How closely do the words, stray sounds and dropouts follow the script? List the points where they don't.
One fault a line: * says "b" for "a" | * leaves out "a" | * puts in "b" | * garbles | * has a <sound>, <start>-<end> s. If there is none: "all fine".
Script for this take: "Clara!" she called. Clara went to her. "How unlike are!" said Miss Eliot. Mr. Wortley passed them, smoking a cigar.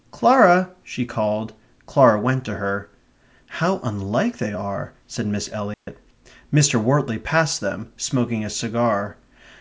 * puts in "they"
* has a dropout, 5.7-5.9 s